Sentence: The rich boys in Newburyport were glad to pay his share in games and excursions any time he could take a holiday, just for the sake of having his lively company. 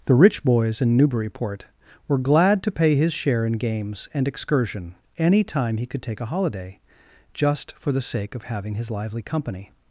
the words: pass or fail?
fail